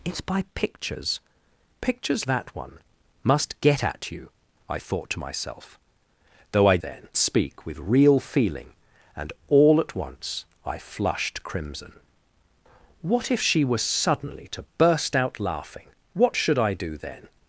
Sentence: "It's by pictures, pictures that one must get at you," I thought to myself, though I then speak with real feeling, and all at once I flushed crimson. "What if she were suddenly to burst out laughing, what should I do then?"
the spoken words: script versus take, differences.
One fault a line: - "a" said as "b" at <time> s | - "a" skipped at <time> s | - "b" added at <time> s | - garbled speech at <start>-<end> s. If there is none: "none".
none